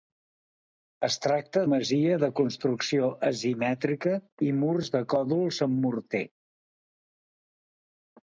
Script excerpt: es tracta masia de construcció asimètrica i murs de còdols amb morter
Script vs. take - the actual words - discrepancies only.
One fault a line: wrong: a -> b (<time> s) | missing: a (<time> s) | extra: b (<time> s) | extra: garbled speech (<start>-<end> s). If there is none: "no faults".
no faults